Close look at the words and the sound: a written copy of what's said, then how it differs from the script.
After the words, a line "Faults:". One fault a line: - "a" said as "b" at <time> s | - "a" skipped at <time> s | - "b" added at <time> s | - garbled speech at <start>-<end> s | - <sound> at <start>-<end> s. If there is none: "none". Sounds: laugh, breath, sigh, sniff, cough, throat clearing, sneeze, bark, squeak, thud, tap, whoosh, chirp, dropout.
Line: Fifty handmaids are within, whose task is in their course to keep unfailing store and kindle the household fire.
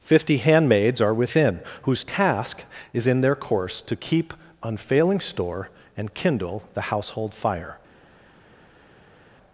Fifty handmaids are within, whose task is in their course to keep unfailing store and kindle the household fire.
Faults:
none